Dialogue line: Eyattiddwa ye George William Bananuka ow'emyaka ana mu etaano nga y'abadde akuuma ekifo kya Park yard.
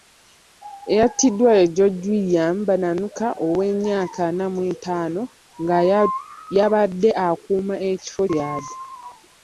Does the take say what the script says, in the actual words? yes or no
no